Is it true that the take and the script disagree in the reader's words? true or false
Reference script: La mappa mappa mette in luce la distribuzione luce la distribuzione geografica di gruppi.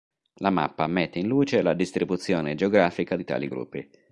true